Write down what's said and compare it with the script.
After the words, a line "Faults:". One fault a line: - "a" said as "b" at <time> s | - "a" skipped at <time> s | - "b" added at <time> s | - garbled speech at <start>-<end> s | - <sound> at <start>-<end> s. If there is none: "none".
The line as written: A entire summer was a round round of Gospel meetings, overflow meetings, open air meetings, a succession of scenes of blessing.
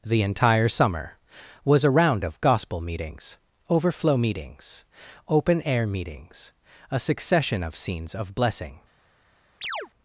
The entire summer was a round of Gospel meetings, overflow meetings, open air meetings, a succession of scenes of blessing.
Faults:
- "A" said as "The" at 0.0 s
- "round" skipped at 2.2 s
- chirp at 9.6-9.9 s